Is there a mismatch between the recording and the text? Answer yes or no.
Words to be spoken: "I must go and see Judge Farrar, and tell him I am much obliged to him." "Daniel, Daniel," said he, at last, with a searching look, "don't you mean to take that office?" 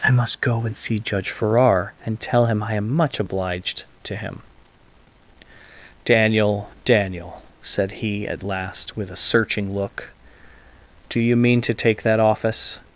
yes